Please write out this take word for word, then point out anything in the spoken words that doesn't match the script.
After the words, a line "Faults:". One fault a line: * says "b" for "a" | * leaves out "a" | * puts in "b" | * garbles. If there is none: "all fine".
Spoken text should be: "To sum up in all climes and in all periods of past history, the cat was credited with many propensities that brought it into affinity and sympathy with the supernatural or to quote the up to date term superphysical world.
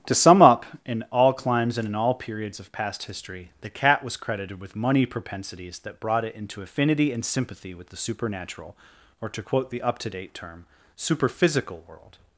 "To sum up in all climes and in all periods of past history, the cat was credited with money propensities that brought it into affinity and sympathy with the supernatural or to quote the up to date term superphysical world.
Faults:
* says "money" for "many"